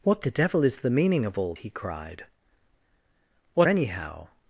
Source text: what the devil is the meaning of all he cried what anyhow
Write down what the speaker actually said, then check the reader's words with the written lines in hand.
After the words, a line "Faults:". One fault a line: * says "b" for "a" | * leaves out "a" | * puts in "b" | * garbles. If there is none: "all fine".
what the devil is the meaning of all he cried what anyhow
Faults:
all fine